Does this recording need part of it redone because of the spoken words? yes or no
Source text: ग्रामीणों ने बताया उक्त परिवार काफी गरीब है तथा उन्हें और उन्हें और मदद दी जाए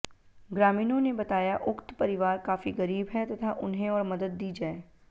yes